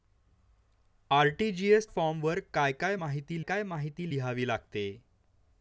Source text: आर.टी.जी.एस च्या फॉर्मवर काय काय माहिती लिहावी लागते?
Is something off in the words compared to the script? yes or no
yes